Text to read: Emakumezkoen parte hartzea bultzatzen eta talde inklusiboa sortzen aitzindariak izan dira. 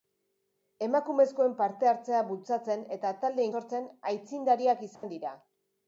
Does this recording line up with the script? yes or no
no